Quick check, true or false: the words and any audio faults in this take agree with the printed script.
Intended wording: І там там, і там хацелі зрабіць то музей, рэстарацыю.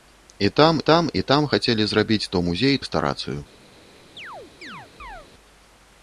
false